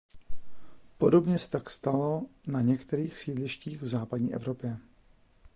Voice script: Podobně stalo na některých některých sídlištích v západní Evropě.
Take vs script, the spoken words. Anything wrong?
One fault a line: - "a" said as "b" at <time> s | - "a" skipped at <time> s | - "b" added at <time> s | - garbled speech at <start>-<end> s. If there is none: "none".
- "se tak" added at 1.4 s
- "některých" skipped at 3.2 s